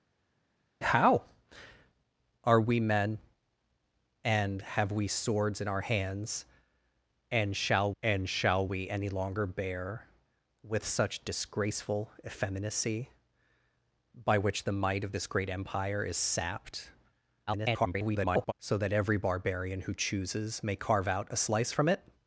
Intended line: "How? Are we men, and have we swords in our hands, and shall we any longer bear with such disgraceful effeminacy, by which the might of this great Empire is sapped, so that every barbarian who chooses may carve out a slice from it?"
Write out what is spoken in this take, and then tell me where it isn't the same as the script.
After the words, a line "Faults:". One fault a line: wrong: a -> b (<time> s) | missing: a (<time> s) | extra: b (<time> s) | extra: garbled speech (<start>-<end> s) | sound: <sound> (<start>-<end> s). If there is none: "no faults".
"How? Are we men, and have we swords in our hands, and shall and shall we any longer bear with such disgraceful effeminacy, by which the might of this great Empire is sapped, [garbled] so that every barbarian who chooses may carve out a slice from it?"
Faults:
extra: and shall (8.0 s)
extra: garbled speech (17.5-18.5 s)